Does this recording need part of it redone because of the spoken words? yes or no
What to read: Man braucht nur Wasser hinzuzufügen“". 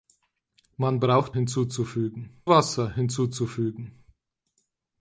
yes